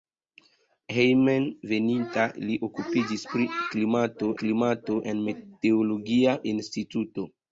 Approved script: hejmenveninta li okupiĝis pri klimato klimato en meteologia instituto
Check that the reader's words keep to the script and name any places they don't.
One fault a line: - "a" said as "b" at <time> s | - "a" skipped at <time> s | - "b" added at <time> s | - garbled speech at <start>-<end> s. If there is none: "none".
none